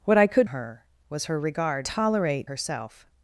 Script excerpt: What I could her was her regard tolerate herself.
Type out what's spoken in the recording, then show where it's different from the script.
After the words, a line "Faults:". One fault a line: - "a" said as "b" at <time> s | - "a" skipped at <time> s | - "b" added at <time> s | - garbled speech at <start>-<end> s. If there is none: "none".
What I could her was her regard tolerate herself.
Faults:
none